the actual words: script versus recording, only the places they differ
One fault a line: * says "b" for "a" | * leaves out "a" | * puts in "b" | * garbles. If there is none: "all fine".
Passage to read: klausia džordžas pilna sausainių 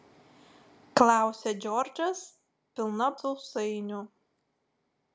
all fine